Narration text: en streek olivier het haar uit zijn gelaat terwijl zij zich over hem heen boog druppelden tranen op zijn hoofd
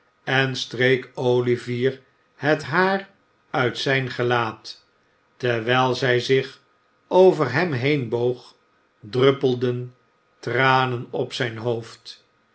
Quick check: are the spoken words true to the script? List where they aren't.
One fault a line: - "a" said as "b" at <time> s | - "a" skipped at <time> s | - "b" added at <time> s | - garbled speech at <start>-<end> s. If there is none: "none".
none